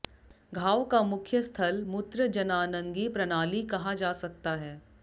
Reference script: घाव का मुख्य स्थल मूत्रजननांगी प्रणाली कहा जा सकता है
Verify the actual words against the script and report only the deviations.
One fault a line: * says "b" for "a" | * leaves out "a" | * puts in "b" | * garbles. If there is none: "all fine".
all fine